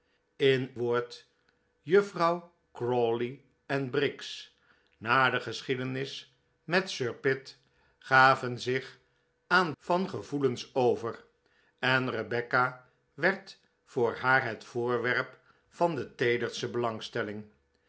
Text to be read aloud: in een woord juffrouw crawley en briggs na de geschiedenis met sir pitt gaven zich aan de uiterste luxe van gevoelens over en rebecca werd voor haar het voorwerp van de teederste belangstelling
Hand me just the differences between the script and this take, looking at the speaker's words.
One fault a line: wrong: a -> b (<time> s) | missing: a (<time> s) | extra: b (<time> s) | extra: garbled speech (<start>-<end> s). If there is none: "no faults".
missing: een (0.7 s)
missing: de uiterste luxe (9.7 s)